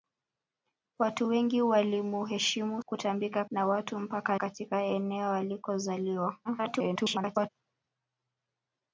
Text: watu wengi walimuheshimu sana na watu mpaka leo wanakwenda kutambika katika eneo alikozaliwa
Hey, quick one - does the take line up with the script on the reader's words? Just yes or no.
no